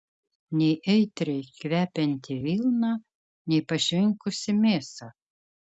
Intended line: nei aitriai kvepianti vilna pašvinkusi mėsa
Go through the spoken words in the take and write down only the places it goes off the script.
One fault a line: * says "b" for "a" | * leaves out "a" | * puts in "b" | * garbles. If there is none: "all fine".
* puts in "nei"